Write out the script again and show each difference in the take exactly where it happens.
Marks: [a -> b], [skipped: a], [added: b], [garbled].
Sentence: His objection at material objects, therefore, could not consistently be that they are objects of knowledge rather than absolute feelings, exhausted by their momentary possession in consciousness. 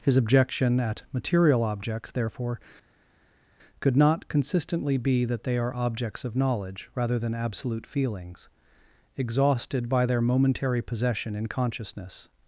His objection at material objects, therefore, could not consistently be that they are objects of knowledge rather than absolute feelings, exhausted by their momentary possession in consciousness.